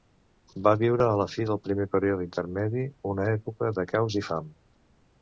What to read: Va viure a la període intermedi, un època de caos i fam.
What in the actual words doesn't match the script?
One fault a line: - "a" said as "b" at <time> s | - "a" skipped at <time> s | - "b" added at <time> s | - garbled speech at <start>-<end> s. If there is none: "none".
- "fi del primer" added at 1.3 s
- "un" said as "una" at 3.1 s